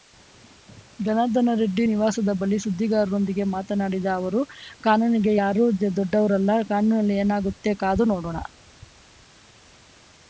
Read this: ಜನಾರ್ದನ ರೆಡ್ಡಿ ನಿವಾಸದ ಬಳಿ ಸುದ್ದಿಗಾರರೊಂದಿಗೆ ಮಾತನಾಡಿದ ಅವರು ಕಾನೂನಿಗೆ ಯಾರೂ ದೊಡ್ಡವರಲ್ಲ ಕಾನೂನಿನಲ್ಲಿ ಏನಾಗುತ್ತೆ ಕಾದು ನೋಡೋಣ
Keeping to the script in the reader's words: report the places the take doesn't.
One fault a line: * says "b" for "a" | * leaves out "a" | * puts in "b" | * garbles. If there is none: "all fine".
all fine